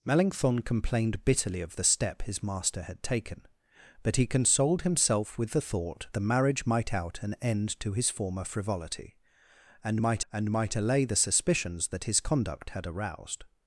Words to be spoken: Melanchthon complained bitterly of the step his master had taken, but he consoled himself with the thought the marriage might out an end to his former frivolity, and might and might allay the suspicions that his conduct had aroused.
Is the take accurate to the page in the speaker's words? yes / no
yes